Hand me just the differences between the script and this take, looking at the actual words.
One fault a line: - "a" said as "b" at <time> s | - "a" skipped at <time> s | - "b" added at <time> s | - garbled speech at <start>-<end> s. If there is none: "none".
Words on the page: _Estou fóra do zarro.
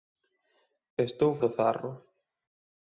- "fóra" skipped at 1.3 s